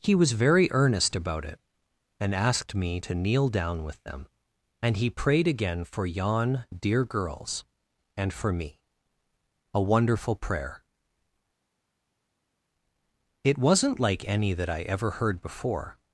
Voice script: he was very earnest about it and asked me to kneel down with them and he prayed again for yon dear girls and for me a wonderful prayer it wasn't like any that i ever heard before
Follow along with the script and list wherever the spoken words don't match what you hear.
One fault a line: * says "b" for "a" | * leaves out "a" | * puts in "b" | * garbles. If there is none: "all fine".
all fine